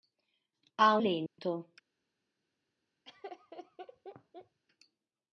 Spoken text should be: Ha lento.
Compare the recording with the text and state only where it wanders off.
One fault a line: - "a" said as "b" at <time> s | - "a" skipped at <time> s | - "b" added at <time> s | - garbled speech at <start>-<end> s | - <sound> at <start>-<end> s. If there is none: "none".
- dropout at 1.3-1.4 s
- laugh at 3.0-4.6 s